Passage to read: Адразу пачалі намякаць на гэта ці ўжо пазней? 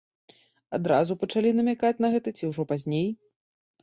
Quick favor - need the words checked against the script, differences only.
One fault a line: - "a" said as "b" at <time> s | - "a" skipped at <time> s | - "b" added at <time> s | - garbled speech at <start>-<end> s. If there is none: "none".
none